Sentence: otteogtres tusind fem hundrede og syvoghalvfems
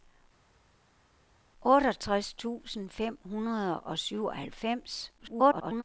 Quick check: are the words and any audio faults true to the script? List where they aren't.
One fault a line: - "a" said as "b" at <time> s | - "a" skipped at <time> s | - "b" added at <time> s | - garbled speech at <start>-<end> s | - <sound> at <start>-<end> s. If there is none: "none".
- garbled speech at 5.2-5.8 s